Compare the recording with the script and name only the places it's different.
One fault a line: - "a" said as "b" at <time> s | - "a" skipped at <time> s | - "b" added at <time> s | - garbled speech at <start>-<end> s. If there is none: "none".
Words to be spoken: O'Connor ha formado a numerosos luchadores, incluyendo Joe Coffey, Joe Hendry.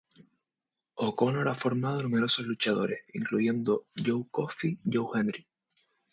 none